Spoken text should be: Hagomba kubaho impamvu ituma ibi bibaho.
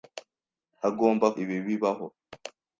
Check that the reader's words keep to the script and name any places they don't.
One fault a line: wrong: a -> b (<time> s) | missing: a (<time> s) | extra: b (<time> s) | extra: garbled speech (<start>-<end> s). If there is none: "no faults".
missing: kubaho impamvu ituma (1.3 s)